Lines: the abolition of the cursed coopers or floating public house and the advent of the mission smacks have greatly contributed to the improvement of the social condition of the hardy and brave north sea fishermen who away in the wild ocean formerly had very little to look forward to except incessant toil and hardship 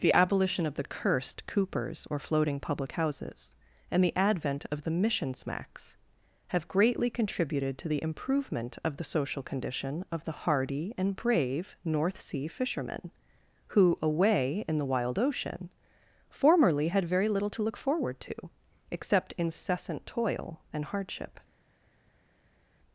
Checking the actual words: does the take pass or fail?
fail